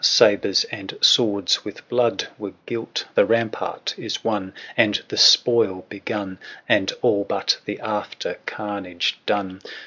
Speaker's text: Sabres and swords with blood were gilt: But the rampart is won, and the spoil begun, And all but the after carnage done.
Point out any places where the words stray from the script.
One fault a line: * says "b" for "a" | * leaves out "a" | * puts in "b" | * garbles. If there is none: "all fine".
* leaves out "But"